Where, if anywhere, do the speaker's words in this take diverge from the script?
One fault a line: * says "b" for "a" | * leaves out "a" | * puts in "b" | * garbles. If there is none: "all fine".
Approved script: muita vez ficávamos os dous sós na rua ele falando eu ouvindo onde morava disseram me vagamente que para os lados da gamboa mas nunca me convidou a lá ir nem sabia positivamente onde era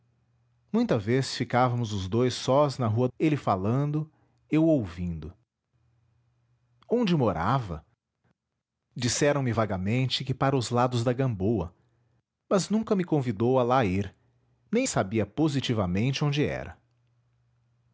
all fine